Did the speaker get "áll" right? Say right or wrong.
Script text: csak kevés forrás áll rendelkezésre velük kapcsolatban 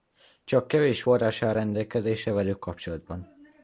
right